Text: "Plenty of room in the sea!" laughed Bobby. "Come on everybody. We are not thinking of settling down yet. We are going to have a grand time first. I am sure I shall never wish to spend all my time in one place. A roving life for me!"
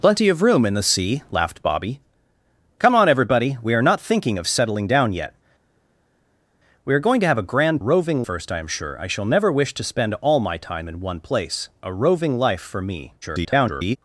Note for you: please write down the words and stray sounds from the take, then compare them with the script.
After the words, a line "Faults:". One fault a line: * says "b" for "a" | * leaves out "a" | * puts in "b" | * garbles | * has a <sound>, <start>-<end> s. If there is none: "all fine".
"Plenty of room in the sea!" laughed Bobby. "Come on everybody. We are not thinking of settling down yet. We are going to have a grand roving first. I am sure I shall never wish to spend all my time in one place. A roving life for me!" [garbled]
Faults:
* says "roving" for "time"
* garbles